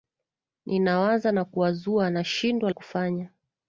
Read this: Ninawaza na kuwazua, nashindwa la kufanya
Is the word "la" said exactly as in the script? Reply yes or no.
no